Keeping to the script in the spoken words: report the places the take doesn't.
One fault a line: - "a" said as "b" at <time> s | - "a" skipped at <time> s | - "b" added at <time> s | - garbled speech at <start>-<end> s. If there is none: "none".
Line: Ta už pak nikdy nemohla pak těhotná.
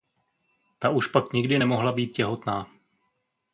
- "pak" said as "být" at 1.9 s